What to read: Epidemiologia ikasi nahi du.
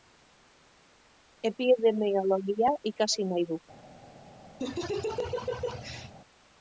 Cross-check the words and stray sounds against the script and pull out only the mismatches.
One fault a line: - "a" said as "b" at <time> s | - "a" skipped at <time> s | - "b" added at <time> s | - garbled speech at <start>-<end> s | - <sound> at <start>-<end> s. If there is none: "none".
- laugh at 4.6-6.1 s